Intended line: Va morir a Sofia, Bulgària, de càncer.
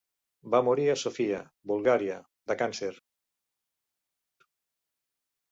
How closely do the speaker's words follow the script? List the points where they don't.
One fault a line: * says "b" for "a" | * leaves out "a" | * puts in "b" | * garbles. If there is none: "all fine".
all fine